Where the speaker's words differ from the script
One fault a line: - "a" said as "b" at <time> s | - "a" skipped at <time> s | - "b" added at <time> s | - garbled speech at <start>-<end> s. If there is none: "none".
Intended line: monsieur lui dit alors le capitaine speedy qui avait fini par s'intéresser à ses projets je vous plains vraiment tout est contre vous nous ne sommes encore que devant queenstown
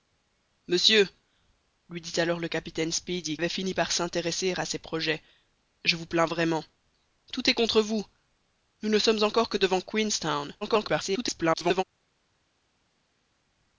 - "qui" skipped at 3.4 s
- garbled speech at 10.6-11.8 s